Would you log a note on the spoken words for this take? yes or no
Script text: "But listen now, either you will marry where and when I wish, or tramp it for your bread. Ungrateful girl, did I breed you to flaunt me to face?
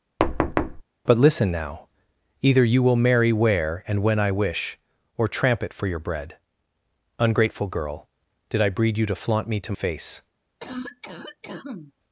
no